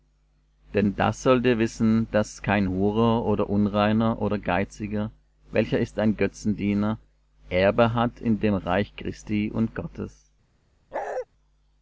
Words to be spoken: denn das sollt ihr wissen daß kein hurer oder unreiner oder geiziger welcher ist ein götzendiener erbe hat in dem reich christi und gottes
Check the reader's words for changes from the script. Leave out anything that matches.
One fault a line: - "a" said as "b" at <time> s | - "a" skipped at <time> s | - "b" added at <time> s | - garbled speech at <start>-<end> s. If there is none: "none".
none